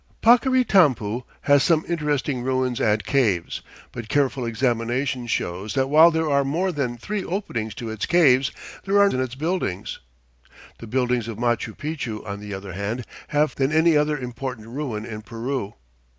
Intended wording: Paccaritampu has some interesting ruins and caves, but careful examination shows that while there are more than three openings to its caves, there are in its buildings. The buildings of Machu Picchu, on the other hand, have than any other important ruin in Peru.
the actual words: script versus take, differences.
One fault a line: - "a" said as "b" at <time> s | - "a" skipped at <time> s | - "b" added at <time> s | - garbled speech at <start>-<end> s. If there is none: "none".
none